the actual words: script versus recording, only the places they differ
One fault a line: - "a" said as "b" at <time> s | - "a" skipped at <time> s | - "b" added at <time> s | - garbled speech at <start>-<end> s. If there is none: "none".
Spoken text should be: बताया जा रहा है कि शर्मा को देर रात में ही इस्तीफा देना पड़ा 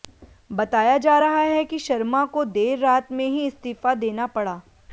none